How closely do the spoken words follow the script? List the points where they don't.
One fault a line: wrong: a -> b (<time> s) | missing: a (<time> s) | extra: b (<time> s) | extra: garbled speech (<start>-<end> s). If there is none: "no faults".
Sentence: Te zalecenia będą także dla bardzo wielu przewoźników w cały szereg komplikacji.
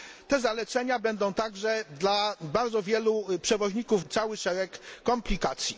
no faults